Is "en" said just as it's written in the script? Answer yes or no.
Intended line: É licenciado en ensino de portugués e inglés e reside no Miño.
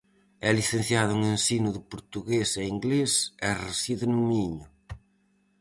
yes